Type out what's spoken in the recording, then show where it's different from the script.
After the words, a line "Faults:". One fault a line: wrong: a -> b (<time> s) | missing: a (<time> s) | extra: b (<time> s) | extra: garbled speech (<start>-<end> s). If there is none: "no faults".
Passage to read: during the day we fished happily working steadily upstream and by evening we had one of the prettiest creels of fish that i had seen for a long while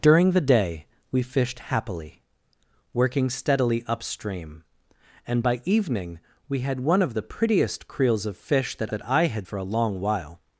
during the day we fished happily working steadily upstream and by evening we had one of the prettiest creels of fish that that i had for a long while
Faults:
extra: that (8.9 s)
missing: seen (9.5 s)